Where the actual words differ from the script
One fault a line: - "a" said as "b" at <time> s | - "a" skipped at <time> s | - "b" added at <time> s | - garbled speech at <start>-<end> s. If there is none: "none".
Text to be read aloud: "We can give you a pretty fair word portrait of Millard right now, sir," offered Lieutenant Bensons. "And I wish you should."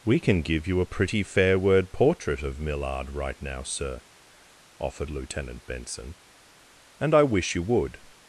- "Bensons" said as "Benson" at 5.7 s
- "should" said as "would" at 7.6 s